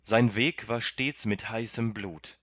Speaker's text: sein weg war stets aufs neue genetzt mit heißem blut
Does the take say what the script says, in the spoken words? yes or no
no